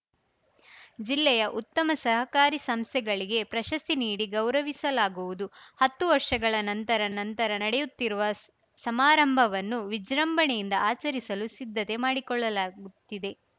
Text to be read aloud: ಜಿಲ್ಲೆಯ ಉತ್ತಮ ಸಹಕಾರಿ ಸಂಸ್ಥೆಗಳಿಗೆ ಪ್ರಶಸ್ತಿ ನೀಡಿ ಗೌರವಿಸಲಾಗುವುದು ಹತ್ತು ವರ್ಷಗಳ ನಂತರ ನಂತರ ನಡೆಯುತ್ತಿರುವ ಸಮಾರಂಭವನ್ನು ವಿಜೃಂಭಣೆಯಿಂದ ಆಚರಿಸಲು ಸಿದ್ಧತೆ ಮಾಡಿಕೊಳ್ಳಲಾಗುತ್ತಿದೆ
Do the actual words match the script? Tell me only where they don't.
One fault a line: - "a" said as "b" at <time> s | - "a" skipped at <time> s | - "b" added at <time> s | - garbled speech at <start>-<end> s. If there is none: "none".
none